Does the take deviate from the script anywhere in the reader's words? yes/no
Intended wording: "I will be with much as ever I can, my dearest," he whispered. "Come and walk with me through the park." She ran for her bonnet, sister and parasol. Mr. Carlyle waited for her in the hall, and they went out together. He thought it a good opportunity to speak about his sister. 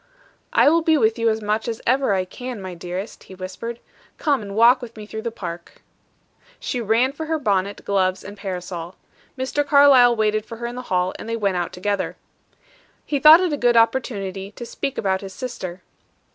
yes